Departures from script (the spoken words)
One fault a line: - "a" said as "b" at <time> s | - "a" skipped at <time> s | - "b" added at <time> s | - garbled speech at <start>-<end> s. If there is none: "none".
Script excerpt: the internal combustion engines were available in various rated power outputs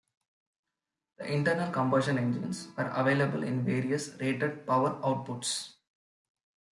none